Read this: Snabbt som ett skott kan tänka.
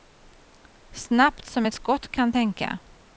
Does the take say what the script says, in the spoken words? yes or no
yes